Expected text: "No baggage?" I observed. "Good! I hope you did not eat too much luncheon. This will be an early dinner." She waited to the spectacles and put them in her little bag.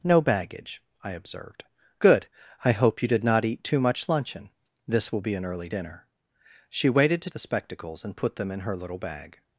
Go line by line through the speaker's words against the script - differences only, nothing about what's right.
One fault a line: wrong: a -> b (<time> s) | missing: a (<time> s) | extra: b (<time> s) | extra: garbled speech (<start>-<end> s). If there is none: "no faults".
no faults